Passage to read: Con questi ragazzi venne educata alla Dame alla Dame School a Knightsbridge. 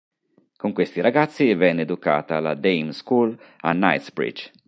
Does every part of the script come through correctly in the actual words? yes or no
no